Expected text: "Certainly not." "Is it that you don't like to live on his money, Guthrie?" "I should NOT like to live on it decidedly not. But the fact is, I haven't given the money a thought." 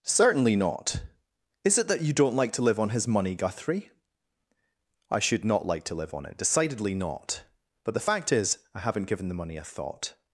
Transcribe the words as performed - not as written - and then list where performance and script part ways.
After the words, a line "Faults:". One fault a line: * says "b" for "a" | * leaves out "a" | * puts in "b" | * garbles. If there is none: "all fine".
"Certainly not." "Is it that you don't like to live on his money, Guthrie?" "I should NOT like to live on it decidedly not. But the fact is, I haven't given the money a thought."
Faults:
all fine